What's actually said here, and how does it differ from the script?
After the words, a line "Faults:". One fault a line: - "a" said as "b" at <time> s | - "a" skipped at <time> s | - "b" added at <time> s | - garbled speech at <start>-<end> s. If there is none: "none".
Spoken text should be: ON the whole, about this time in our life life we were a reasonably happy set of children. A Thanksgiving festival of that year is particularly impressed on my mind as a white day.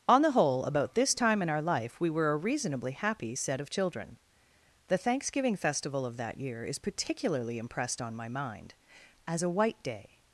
ON the whole, about this time in our life we were a reasonably happy set of children. The Thanksgiving festival of that year is particularly impressed on my mind as a white day.
Faults:
- "life" skipped at 2.0 s
- "A" said as "The" at 4.9 s